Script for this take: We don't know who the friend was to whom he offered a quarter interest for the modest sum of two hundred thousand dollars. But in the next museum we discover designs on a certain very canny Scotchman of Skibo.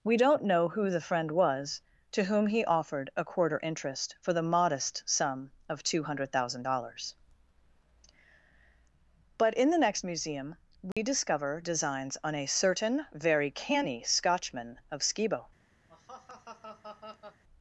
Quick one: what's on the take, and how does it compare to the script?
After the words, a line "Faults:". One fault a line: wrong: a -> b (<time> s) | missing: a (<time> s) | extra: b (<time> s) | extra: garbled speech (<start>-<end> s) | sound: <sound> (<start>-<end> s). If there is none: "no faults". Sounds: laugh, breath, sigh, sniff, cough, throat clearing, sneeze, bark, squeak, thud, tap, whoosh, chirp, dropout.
We don't know who the friend was to whom he offered a quarter interest for the modest sum of two hundred thousand dollars. But in the next museum we discover designs on a certain very canny Scotchman of Skibo.
Faults:
sound: dropout (10.9-11.0 s)
sound: laugh (15.9-17.4 s)